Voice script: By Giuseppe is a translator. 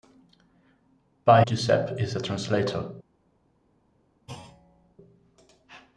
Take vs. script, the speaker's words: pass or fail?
pass